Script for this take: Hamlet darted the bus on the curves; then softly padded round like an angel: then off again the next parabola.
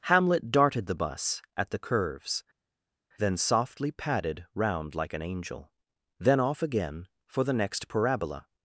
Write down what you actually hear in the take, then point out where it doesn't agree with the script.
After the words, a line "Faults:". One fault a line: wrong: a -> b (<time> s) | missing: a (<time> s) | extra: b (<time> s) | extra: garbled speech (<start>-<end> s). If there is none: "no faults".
Hamlet darted the bus at the curves; then softly padded round like an angel: then off again for the next parabola.
Faults:
wrong: on -> at (1.6 s)
extra: for (7.2 s)